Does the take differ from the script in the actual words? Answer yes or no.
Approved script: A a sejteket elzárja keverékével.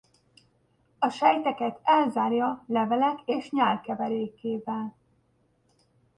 yes